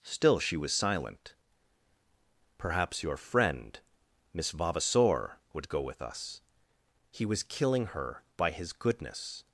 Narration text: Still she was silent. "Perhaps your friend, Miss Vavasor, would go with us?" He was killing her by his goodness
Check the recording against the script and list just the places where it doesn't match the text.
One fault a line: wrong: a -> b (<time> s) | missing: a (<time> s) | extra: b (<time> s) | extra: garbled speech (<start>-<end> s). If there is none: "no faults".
no faults